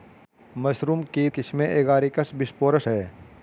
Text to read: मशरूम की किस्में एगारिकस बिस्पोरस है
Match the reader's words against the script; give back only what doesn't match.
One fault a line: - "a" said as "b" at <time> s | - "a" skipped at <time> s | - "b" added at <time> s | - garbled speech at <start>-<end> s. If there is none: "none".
none